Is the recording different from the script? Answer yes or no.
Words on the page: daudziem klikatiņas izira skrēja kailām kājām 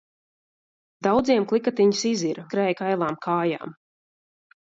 no